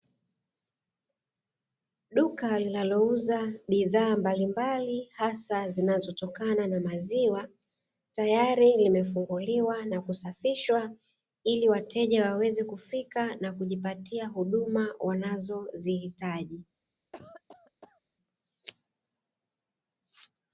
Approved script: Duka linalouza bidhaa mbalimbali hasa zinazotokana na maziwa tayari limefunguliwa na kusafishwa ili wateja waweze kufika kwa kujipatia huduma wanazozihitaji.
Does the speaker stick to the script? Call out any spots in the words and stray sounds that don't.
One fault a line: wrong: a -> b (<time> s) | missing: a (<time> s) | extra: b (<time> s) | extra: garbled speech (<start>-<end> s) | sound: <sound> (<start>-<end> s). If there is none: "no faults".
wrong: kwa -> na (13.3 s)
sound: cough (17.1-18.0 s)